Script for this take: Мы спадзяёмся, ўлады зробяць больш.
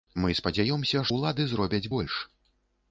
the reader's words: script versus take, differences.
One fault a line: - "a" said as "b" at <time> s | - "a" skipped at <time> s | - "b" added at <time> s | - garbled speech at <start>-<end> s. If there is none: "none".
none